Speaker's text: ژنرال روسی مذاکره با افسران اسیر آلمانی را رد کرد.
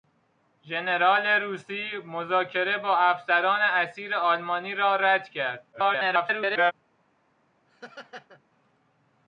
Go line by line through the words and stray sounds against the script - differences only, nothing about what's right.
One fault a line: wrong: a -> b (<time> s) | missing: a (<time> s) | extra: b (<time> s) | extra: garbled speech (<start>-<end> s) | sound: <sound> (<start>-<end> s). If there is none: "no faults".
extra: garbled speech (5.7-6.7 s)
sound: laugh (7.7-8.4 s)